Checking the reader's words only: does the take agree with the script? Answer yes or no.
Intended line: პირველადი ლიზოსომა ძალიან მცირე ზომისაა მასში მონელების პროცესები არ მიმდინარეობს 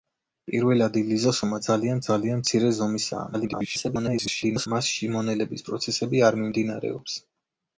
no